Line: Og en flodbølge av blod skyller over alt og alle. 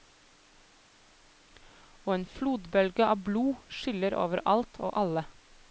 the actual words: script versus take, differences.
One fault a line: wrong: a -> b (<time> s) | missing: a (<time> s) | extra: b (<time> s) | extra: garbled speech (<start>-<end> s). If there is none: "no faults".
no faults